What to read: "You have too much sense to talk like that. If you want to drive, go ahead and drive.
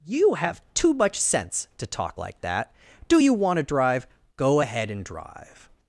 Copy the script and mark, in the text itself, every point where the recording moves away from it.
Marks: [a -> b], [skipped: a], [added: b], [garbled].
"You have too much sense to talk like that. [If -> Do] you want to drive, go ahead and drive.